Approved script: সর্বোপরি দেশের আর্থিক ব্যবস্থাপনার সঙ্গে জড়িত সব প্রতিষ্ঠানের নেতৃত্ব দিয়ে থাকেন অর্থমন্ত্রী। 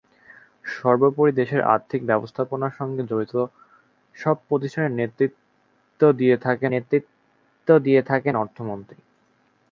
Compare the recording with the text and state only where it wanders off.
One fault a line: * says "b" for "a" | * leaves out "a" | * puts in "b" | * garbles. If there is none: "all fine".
* puts in "নেতৃত্ব দিয়ে থাকেন"